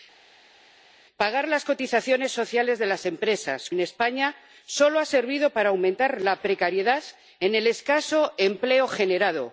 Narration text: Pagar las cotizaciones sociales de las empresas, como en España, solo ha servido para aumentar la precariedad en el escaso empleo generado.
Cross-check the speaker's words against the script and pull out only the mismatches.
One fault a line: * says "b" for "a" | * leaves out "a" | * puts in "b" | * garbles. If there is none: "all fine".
* leaves out "como"